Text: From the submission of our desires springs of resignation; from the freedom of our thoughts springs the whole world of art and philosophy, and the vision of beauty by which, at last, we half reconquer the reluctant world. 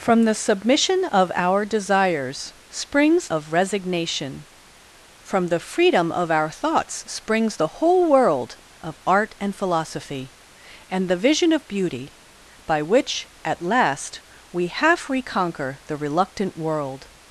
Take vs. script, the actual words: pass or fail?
pass